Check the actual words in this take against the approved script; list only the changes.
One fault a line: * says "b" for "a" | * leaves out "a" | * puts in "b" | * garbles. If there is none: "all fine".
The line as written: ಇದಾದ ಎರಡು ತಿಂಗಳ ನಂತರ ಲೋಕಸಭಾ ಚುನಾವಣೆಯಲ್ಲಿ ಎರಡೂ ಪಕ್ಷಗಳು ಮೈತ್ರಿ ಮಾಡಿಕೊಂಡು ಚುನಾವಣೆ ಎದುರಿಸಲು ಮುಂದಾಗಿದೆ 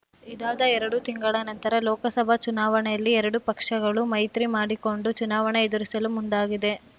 all fine